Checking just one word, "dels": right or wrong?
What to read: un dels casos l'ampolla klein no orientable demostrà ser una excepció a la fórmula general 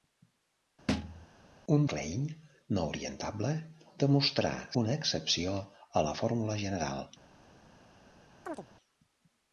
wrong